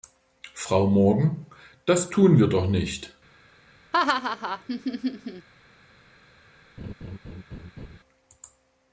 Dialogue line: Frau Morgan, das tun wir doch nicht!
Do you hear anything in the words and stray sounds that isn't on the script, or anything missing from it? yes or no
yes